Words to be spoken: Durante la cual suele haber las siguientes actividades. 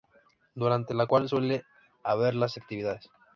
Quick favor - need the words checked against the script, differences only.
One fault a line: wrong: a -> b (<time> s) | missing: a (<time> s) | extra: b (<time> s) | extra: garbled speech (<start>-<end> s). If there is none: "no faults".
missing: siguientes (2.5 s)